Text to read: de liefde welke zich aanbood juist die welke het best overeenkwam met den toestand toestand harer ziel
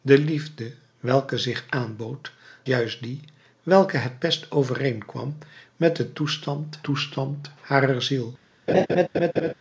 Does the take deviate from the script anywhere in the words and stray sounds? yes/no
yes